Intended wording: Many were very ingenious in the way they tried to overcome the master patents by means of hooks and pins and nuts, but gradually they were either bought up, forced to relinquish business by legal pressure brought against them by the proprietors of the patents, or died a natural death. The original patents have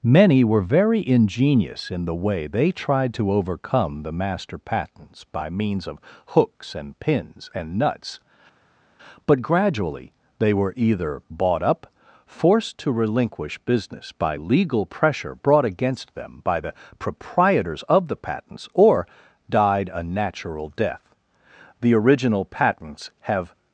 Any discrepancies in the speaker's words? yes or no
no